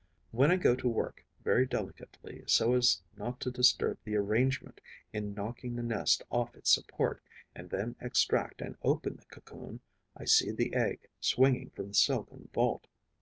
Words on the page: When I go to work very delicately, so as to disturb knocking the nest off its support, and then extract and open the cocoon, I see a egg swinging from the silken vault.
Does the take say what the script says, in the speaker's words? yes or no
no